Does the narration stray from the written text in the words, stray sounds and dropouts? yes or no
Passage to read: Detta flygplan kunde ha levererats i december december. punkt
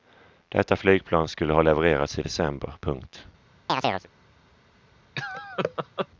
yes